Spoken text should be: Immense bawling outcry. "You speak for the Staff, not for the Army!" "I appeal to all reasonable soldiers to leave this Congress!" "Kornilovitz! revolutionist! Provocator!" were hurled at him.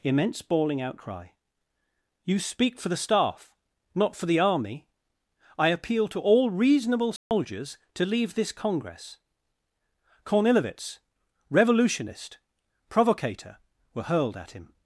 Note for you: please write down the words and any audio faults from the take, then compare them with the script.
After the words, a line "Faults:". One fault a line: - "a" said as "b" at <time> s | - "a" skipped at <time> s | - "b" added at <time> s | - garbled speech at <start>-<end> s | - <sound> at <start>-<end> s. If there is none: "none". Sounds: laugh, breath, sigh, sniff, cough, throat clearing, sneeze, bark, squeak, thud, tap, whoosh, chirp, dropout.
Immense bawling outcry. "You speak for the Staff, not for the Army!" "I appeal to all reasonable soldiers to leave this Congress!" "Kornilovitz! revolutionist! Provocator!" were hurled at him.
Faults:
- dropout at 7.2-7.3 s